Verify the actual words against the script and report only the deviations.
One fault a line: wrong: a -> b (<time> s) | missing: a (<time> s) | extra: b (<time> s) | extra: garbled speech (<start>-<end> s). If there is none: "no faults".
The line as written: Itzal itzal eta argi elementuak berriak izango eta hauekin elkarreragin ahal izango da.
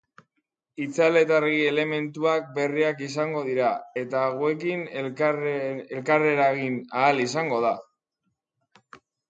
missing: itzal (1.2 s)
extra: dira (3.5 s)